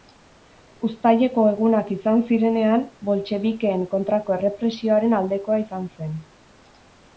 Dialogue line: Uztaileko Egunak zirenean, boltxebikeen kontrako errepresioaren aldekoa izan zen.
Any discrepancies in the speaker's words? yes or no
yes